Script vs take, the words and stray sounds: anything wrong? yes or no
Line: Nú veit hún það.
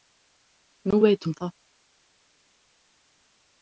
no